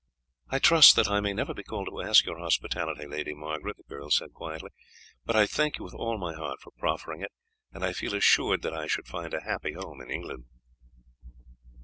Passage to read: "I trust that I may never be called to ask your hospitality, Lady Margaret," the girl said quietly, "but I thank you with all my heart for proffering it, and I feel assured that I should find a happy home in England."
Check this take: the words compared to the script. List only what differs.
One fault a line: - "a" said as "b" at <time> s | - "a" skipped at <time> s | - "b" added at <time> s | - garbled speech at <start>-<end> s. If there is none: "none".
none